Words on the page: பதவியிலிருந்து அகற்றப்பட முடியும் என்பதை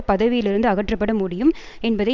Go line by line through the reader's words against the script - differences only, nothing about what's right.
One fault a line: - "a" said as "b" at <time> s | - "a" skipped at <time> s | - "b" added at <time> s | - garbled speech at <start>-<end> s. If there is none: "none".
none